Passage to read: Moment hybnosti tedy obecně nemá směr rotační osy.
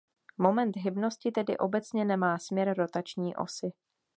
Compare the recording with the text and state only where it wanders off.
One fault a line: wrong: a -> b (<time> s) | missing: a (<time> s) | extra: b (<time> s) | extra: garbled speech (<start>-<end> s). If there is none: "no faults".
no faults